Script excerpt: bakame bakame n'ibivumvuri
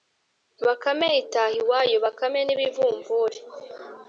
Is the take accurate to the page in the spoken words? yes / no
no